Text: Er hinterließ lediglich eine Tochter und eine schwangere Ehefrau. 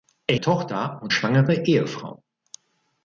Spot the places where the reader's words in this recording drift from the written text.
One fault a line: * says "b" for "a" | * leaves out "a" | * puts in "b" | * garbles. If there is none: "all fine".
* leaves out "hinterließ lediglich eine"
* leaves out "eine"